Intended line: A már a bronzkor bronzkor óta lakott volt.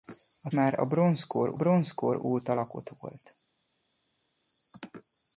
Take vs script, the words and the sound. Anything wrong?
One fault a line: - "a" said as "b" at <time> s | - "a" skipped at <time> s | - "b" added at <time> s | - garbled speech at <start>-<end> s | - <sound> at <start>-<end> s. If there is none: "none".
none